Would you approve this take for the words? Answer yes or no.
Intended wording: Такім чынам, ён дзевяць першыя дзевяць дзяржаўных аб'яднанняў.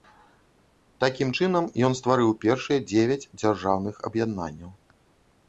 no